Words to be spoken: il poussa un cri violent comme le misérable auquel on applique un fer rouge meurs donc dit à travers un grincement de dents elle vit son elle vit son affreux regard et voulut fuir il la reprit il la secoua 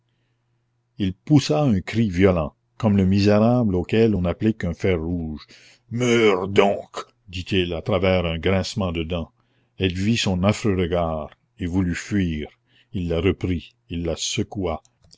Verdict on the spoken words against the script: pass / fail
fail